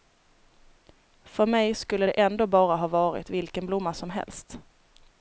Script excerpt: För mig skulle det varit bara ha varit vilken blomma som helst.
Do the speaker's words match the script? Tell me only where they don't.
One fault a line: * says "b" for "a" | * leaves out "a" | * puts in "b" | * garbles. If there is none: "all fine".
* says "ändå" for "varit"